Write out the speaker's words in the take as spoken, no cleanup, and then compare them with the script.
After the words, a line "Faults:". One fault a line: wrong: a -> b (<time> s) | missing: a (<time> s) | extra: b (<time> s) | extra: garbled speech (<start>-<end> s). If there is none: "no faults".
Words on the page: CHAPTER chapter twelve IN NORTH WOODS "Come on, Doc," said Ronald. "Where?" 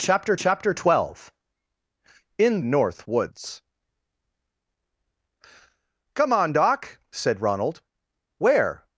CHAPTER chapter twelve IN NORTH WOODS "Come on, Doc," said Ronald. "Where?"
Faults:
no faults